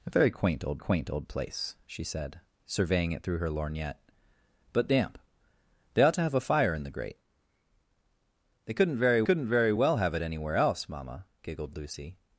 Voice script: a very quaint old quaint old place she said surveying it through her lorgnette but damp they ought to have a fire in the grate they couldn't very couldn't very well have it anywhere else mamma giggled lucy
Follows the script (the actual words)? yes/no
yes